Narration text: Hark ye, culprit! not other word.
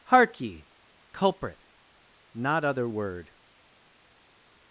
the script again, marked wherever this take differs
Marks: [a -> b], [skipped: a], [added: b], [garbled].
Hark ye, culprit! not other word.